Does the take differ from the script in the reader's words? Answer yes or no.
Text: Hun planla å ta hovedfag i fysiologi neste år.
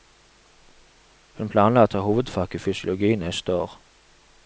no